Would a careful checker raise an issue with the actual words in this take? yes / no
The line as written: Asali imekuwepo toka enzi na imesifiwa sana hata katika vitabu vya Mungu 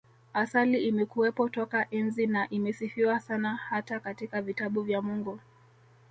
no